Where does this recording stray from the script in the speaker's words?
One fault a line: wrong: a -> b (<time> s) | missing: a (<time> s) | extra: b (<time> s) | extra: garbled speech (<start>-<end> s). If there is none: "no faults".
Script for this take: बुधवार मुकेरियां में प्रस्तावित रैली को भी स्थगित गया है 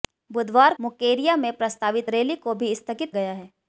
no faults